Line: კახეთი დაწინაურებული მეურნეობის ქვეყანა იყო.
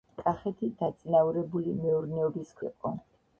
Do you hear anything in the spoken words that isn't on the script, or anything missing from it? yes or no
yes